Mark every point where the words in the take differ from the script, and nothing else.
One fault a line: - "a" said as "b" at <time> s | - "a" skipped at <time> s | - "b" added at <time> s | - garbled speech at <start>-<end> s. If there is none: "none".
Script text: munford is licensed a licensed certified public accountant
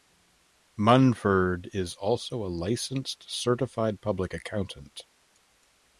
- "licensed" said as "also" at 1.9 s